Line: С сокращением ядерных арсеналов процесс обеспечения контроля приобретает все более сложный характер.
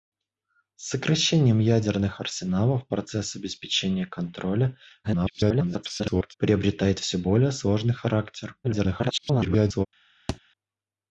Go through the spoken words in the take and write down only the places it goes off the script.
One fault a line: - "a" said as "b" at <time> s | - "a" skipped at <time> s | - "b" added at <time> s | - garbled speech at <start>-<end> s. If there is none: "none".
- garbled speech at 5.0-6.3 s
- garbled speech at 8.6-9.9 s